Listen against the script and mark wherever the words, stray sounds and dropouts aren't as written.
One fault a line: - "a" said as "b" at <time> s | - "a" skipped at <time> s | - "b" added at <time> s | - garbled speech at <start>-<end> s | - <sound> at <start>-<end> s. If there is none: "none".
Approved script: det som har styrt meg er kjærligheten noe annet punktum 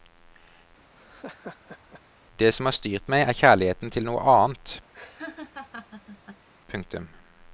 - laugh at 1.0-2.0 s
- "til" added at 3.9 s
- laugh at 4.9-6.5 s